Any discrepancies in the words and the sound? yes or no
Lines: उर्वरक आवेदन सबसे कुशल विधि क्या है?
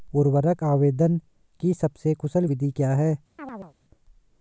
yes